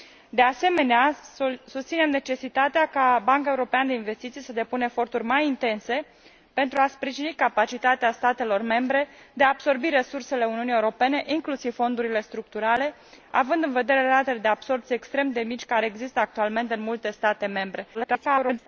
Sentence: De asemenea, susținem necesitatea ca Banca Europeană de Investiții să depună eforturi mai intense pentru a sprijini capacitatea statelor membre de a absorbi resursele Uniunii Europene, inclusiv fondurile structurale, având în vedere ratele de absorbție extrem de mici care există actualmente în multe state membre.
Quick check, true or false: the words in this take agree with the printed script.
false